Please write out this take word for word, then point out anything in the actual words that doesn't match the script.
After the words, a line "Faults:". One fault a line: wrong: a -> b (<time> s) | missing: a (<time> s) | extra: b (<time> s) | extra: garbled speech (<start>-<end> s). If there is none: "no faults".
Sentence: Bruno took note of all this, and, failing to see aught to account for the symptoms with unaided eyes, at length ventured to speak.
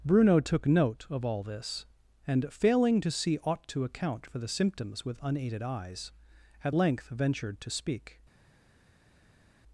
Bruno took note of all this, and, failing to see aught to account for the symptoms with unaided eyes, at length ventured to speak.
Faults:
no faults